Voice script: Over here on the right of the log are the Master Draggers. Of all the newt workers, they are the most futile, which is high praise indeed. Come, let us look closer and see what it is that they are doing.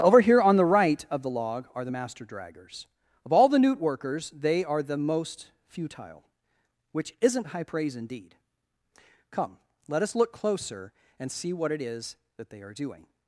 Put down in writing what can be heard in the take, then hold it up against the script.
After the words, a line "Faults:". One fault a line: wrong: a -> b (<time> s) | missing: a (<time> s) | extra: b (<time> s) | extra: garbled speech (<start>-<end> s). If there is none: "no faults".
Over here on the right of the log are the Master Draggers. Of all the newt workers, they are the most futile, which isn't high praise indeed. Come, let us look closer and see what it is that they are doing.
Faults:
wrong: is -> isn't (7.2 s)